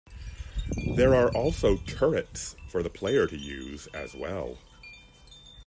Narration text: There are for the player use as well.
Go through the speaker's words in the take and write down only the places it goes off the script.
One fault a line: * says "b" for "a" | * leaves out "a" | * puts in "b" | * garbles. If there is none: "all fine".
* puts in "also turrets"
* puts in "to"